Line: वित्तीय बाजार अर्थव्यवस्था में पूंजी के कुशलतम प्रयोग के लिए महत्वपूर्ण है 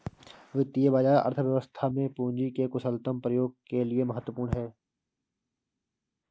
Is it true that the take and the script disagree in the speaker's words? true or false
false